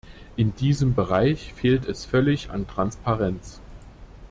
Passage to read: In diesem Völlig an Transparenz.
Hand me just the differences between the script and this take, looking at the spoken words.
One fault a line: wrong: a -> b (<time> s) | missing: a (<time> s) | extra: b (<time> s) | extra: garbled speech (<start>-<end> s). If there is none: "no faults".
extra: Bereich fehlt es (0.9 s)